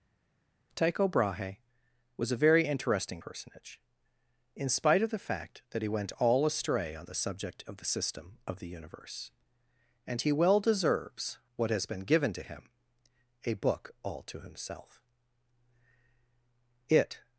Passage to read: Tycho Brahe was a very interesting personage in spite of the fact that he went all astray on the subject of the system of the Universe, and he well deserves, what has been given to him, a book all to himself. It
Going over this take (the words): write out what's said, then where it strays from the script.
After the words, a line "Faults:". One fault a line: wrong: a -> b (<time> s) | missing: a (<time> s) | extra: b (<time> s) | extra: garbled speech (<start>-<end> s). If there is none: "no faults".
Tycho Brahe was a very interesting personage in spite of the fact that he went all astray on the subject of the system of the Universe, and he well deserves, what has been given to him, a book all to himself. It
Faults:
no faults